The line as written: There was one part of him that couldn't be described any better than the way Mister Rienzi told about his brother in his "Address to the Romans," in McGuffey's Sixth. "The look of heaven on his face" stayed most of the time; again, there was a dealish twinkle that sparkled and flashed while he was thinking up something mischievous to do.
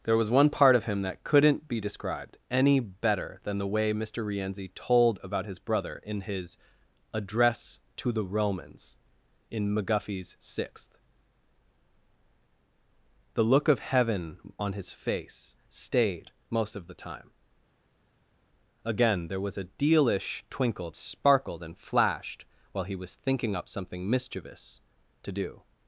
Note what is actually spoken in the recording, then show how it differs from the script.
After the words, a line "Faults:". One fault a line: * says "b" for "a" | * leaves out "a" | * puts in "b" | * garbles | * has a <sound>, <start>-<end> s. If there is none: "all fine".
There was one part of him that couldn't be described any better than the way Mister Rienzi told about his brother in his "Address to the Romans," in McGuffey's Sixth. "The look of heaven on his face" stayed most of the time; again, there was a dealish twinkle sparkled and flashed while he was thinking up something mischievous to do.
Faults:
* leaves out "that"